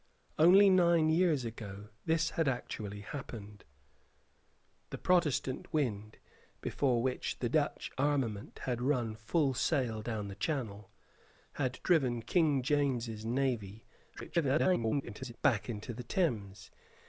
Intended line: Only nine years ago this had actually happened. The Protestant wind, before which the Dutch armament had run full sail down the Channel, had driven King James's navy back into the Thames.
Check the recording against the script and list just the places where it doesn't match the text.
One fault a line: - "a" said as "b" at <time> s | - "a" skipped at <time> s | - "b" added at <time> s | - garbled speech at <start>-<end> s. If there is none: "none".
- garbled speech at 14.2-15.3 s